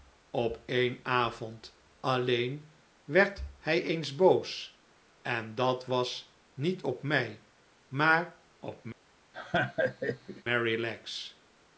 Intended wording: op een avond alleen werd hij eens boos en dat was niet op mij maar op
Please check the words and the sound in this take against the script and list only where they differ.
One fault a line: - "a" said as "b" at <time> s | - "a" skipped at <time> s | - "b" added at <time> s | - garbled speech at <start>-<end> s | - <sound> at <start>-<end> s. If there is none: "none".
- laugh at 9.3-10.4 s